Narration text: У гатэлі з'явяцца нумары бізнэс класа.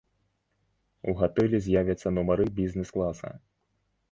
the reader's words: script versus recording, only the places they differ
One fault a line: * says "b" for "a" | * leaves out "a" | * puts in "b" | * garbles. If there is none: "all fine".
all fine